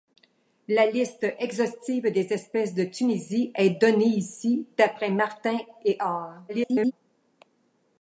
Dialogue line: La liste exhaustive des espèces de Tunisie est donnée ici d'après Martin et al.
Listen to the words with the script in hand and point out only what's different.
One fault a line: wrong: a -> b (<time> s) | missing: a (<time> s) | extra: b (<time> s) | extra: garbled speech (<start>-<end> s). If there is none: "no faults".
extra: garbled speech (6.5-6.9 s)